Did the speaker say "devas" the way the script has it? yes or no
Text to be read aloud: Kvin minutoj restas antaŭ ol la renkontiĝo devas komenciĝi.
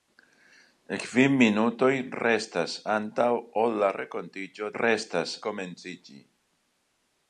no